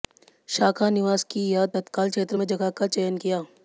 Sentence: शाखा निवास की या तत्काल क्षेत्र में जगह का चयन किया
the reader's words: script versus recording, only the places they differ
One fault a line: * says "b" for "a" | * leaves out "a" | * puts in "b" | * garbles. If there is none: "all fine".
all fine